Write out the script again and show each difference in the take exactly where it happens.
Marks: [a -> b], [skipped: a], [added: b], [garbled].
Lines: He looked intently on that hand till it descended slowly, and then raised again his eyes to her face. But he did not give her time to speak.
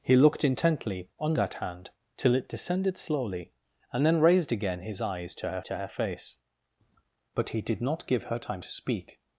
He looked intently on that hand till it descended slowly, and then raised again his eyes to her [added: to her] face. But he did not give her time to speak.